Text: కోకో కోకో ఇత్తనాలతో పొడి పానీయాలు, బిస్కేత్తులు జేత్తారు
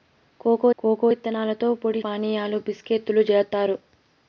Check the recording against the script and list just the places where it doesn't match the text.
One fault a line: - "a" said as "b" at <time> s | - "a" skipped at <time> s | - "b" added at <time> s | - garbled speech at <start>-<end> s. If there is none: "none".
none